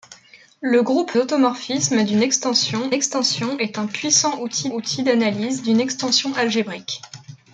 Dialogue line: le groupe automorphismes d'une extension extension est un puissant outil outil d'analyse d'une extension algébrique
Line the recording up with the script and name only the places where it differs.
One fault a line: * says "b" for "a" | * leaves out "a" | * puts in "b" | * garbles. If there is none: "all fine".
all fine